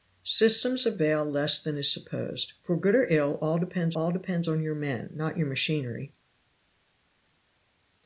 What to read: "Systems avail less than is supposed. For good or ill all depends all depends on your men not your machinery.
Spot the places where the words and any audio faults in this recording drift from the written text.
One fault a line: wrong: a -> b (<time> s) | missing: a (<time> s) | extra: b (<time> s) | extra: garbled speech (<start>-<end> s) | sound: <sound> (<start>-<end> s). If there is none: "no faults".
no faults